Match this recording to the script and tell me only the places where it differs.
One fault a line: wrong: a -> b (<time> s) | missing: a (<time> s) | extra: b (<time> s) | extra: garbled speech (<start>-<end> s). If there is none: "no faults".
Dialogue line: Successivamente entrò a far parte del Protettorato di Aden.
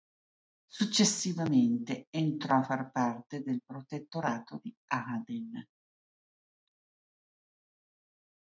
no faults